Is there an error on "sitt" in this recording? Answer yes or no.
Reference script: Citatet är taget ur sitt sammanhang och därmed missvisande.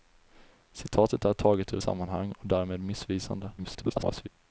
yes